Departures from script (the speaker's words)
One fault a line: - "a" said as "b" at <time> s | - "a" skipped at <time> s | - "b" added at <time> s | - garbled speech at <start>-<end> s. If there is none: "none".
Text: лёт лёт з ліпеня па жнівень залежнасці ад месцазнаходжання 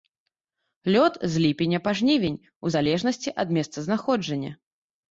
- "лёт" skipped at 1.1 s
- "у" added at 2.6 s